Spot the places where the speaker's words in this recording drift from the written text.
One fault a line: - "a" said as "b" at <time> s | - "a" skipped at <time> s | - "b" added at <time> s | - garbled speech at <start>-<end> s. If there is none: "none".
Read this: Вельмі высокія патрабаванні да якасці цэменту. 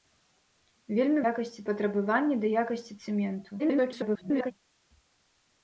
- "высокія" said as "якасці" at 1.3 s
- garbled speech at 3.6-4.5 s